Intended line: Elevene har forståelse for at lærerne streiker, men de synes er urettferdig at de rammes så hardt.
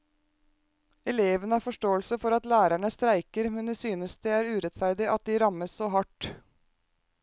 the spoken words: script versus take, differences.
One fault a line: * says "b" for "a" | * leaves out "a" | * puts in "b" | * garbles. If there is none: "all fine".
* puts in "det"